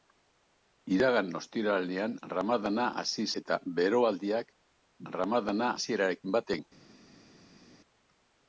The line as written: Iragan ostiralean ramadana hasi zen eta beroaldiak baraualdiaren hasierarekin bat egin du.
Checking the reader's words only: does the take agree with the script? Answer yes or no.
no